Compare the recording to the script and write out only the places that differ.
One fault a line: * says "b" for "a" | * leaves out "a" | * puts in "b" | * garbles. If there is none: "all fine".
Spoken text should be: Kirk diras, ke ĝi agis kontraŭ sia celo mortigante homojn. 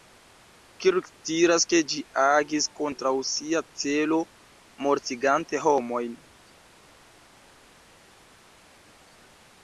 all fine